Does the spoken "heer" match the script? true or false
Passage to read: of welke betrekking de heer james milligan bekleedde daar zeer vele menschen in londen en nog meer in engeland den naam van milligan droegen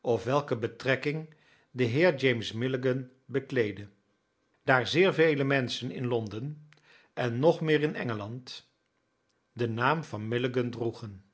true